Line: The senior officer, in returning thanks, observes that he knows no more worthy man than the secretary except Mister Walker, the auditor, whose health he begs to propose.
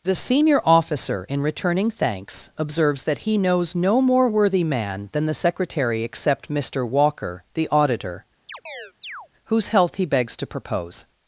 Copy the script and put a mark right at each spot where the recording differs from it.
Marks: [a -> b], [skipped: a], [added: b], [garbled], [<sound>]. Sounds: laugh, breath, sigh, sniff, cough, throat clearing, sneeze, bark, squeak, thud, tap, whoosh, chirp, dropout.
The senior officer, in returning thanks, observes that he knows no more worthy man than the secretary except Mister Walker, the auditor, [chirp] whose health he begs to propose.